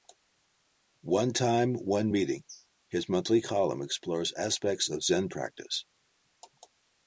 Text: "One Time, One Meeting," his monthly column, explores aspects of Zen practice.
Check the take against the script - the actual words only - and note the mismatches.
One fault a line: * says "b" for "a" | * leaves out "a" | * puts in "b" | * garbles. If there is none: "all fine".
all fine